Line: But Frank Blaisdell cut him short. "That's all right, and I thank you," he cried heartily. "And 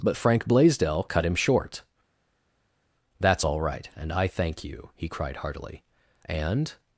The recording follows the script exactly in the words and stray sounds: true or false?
true